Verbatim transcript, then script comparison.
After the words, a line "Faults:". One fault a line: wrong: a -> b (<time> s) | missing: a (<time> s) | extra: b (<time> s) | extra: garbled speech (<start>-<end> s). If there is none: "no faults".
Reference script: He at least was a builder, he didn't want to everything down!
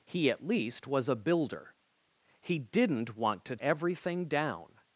He at least was a builder, he didn't want to everything down!
Faults:
no faults